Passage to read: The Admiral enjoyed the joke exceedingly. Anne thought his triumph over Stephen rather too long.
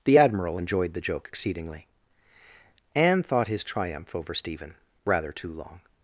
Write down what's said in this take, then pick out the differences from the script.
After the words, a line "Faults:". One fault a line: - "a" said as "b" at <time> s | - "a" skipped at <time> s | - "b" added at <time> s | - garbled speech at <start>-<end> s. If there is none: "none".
The Admiral enjoyed the joke exceedingly. Anne thought his triumph over Stephen rather too long.
Faults:
none